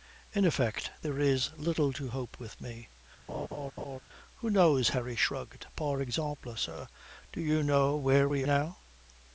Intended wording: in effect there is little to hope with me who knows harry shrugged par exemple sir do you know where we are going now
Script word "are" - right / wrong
wrong